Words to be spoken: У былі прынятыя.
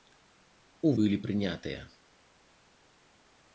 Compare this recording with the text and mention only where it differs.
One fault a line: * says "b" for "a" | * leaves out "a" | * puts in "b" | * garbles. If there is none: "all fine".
all fine